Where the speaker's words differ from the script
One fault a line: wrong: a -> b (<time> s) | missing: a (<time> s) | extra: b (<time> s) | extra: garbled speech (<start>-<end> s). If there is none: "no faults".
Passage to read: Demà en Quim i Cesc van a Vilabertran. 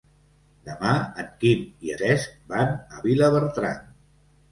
no faults